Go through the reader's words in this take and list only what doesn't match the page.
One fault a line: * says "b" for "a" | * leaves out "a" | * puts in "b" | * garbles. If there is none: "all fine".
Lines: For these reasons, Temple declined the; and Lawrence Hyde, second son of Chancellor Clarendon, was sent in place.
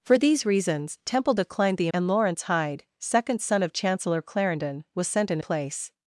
all fine